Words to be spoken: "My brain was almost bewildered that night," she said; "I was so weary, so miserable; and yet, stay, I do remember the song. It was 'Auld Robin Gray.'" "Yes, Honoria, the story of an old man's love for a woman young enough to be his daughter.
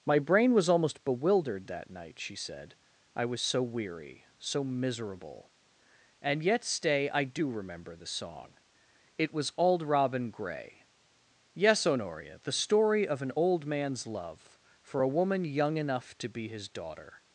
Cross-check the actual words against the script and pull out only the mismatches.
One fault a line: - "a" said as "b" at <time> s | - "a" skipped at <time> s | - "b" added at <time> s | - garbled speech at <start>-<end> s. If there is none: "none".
none